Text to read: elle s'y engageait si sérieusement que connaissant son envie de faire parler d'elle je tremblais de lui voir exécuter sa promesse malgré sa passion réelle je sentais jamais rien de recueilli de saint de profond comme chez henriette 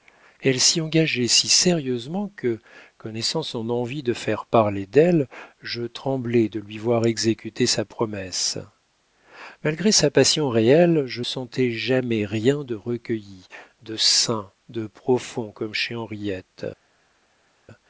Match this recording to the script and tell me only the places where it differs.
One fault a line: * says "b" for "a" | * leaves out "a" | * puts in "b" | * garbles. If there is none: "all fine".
all fine